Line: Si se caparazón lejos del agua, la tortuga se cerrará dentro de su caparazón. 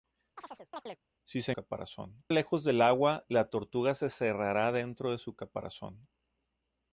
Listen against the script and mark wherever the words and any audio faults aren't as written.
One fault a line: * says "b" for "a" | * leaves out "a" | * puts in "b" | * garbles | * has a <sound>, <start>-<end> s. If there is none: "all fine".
* has a chirp, 0.4-1.0 s